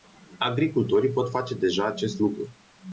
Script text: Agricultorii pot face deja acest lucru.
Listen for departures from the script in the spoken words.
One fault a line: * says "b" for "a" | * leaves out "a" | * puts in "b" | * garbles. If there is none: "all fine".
all fine